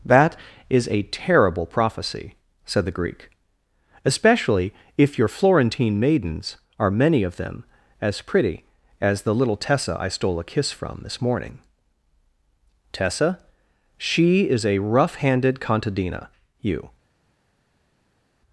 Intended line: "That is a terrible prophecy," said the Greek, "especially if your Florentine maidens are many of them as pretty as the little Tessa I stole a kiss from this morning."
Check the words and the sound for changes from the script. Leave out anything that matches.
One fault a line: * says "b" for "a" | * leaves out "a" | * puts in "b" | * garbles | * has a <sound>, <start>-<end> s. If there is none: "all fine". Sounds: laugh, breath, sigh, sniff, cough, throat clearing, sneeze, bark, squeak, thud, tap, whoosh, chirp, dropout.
* puts in "Tessa she is a rough handed contadina you"